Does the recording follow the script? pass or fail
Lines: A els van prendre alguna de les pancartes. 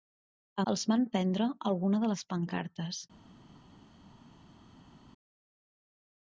pass